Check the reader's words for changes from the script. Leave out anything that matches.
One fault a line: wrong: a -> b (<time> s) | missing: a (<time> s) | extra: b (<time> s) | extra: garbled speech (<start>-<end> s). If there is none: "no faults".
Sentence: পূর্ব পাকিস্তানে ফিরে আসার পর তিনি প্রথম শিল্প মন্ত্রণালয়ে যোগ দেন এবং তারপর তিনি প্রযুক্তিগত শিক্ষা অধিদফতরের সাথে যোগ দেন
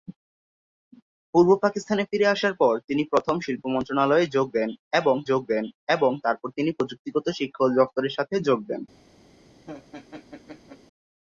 extra: যোগ দেন এবং (5.3 s)